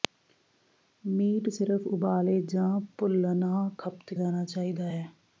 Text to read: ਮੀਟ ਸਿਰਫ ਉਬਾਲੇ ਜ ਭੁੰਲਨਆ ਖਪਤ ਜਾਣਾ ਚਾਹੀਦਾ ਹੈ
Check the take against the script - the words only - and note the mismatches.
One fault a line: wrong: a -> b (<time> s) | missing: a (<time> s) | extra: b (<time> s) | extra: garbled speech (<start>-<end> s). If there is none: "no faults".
no faults